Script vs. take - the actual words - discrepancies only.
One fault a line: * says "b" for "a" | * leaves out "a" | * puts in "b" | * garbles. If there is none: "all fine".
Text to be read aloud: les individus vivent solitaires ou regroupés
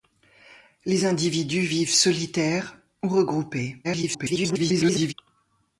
* garbles